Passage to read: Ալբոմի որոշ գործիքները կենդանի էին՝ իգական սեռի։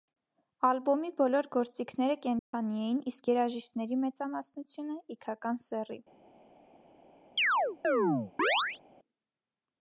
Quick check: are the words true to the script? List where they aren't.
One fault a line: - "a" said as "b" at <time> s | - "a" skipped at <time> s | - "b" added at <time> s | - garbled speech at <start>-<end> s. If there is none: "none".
- "որոշ" said as "բոլոր" at 1.2 s
- "իսկ երաժիշտների մեծամասնությունը" added at 3.1 s